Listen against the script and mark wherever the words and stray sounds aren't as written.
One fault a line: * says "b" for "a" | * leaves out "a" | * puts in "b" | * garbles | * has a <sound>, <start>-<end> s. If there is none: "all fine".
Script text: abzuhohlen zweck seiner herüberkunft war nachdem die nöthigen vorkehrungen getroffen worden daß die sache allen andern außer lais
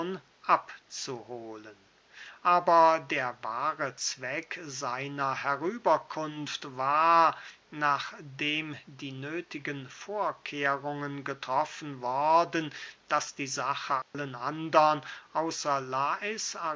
* puts in "aber der wahre"
* has a dropout, 14.0-14.1 s